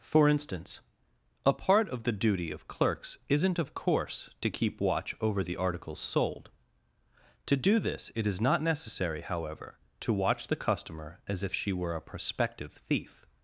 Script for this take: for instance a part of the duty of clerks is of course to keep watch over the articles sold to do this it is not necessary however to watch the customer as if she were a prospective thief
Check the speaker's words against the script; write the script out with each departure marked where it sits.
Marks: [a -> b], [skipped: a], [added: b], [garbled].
for instance a part of the duty of clerks [is -> isn't] of course to keep watch over the articles sold to do this it is not necessary however to watch the customer as if she were a prospective thief